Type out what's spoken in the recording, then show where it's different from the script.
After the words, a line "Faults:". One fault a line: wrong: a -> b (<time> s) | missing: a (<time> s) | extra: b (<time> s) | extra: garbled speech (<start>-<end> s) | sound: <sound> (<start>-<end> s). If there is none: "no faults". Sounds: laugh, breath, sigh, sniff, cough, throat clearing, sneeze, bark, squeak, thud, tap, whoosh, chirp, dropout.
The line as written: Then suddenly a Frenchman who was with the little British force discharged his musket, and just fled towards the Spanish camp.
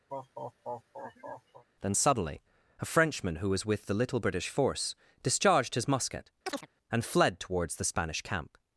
Then suddenly a Frenchman who was with the little British force discharged his musket, and fled towards the Spanish camp.
Faults:
sound: laugh (0.1-1.6 s)
sound: chirp (6.5-6.7 s)
missing: just (7.0 s)